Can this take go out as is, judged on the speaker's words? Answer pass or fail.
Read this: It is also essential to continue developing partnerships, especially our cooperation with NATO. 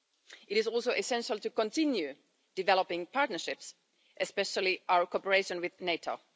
pass